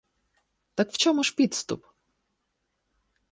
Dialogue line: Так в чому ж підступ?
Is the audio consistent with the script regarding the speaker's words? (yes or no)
yes